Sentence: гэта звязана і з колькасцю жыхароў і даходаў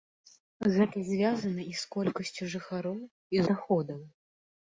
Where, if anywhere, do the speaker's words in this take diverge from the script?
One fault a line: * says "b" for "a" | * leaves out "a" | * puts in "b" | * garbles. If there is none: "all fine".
all fine